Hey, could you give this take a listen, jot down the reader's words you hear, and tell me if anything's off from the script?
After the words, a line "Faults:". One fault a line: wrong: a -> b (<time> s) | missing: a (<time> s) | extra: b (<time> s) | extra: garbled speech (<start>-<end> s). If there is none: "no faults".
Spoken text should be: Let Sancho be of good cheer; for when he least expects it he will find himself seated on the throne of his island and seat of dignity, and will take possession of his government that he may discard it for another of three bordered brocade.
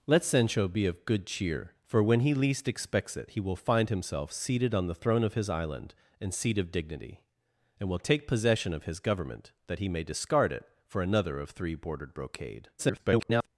Let Sancho be of good cheer; for when he least expects it he will find himself seated on the throne of his island and seat of dignity, and will take possession of his government that he may discard it for another of three bordered brocade. [garbled]
Faults:
extra: garbled speech (12.8-13.5 s)